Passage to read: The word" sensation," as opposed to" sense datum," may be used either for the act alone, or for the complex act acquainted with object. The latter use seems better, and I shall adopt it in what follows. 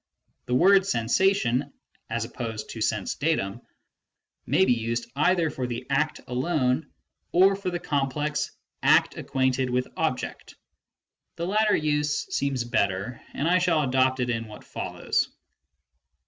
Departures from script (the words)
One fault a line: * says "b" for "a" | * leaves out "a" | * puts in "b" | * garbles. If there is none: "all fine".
all fine